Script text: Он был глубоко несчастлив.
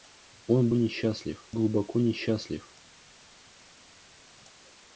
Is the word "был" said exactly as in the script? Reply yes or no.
no